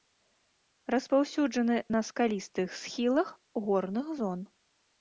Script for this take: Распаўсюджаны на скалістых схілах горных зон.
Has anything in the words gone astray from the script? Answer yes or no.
no